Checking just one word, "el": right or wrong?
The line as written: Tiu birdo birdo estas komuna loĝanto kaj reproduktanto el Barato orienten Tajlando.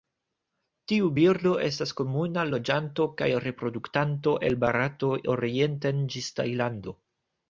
right